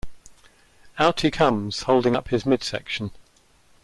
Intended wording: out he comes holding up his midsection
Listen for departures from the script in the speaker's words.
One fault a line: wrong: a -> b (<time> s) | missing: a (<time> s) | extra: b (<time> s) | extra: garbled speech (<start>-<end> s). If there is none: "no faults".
no faults